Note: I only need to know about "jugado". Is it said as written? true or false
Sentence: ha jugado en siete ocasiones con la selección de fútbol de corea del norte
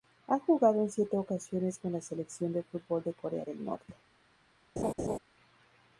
true